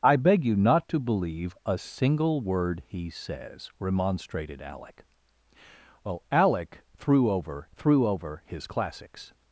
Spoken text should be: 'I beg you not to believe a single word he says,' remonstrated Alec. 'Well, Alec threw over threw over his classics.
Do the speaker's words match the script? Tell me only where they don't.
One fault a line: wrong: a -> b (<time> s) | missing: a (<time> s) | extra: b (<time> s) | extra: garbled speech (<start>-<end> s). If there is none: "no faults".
no faults